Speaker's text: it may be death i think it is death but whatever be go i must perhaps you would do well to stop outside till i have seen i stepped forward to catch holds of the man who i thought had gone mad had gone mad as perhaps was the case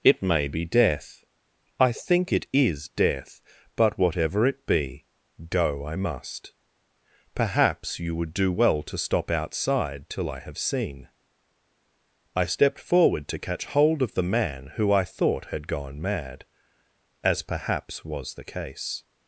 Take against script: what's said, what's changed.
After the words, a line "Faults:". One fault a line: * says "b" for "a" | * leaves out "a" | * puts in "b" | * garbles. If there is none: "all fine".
it may be death i think it is death but whatever it be go i must perhaps you would do well to stop outside till i have seen i stepped forward to catch hold of the man who i thought had gone mad as perhaps was the case
Faults:
* puts in "it"
* says "hold" for "holds"
* leaves out "had gone mad"